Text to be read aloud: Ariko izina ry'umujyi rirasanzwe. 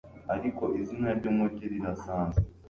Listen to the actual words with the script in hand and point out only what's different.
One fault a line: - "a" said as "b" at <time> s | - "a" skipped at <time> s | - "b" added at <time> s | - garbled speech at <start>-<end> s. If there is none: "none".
none